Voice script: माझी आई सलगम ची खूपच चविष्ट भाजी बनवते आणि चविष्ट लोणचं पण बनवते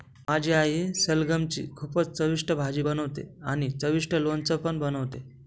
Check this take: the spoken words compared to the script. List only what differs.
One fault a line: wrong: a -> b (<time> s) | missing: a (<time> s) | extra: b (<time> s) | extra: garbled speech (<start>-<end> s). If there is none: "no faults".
no faults